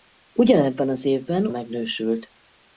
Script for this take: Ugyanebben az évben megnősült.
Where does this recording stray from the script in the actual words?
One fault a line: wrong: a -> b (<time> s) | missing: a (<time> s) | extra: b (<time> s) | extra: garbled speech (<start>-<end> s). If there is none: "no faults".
no faults